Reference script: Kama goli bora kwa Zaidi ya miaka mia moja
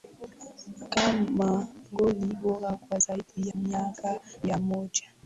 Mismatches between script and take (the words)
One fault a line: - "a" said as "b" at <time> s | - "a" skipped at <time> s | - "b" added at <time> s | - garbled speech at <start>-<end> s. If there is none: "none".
- "ya" skipped at 3.5 s